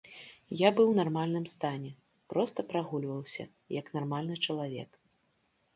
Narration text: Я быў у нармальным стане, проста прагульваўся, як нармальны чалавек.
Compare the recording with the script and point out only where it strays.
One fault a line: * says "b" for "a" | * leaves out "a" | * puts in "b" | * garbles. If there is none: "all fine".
all fine